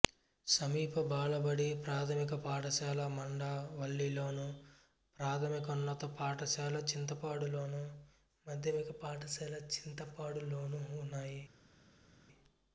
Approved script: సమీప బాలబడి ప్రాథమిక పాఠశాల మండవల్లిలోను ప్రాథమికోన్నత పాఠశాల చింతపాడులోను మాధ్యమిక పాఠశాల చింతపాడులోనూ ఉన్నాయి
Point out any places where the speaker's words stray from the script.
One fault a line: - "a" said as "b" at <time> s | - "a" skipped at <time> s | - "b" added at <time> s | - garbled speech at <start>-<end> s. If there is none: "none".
none